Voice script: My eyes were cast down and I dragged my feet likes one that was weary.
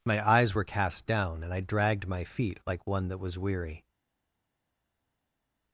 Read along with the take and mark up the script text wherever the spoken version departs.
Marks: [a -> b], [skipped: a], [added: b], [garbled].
My eyes were cast down and I dragged my feet [likes -> like] one that was weary.